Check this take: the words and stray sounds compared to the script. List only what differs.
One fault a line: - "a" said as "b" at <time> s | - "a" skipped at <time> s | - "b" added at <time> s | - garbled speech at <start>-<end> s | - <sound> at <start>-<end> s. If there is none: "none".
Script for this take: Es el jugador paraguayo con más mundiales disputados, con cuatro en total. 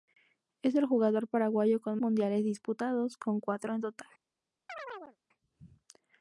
- "más" skipped at 2.0 s
- chirp at 4.7-5.2 s